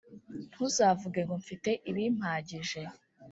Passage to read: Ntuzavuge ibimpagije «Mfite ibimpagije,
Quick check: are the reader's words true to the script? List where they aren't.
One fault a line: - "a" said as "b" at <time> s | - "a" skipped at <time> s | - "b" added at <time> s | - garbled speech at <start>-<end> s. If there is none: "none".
- "ibimpagije" said as "ngo" at 1.2 s